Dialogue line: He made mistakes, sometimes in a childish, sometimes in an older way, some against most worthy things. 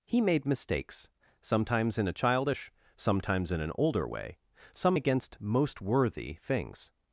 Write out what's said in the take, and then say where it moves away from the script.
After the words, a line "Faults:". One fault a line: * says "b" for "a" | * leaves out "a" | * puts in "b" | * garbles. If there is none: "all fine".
He made mistakes, sometimes in a childish, sometimes in an older way, some against most worthy things.
Faults:
all fine